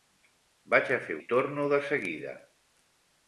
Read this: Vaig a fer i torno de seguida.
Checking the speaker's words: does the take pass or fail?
pass